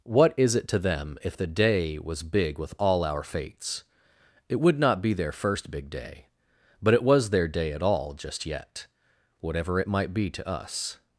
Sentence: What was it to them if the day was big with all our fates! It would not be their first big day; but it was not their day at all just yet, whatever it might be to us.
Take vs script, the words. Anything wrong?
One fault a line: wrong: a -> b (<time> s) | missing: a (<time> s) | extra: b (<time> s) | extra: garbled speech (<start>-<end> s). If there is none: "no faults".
wrong: was -> is (0.3 s)
missing: not (7.3 s)